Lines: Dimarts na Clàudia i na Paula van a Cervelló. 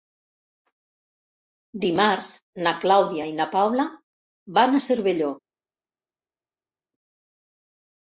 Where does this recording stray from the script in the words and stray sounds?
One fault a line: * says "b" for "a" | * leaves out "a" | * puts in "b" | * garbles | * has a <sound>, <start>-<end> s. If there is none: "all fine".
all fine